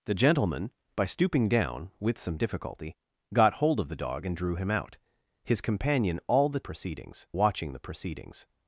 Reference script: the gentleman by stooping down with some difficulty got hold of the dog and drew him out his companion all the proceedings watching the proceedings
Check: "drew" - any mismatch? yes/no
no